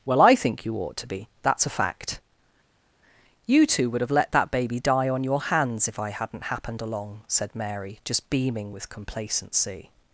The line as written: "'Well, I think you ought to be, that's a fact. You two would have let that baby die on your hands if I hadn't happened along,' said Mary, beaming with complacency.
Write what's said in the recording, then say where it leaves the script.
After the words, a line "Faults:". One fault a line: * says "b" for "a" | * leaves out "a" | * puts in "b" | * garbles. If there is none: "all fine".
"'Well, I think you ought to be, that's a fact. You two would have let that baby die on your hands if I hadn't happened along,' said Mary, just beaming with complacency.
Faults:
* puts in "just"